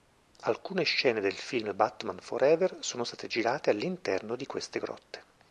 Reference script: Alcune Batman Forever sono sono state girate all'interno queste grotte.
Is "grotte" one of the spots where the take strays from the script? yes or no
no